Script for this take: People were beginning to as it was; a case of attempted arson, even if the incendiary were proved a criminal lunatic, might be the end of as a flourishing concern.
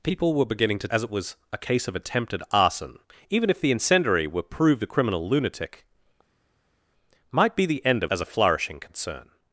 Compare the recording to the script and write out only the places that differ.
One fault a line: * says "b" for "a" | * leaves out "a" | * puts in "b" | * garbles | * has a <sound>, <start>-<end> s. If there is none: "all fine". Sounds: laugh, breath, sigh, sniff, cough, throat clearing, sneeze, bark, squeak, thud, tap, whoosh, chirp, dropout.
all fine